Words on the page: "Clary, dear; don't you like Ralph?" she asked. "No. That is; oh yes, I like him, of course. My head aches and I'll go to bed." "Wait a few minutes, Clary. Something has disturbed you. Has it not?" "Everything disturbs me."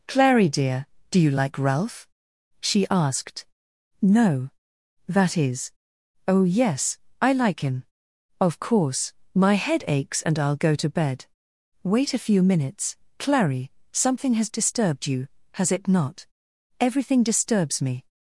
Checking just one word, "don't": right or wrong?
wrong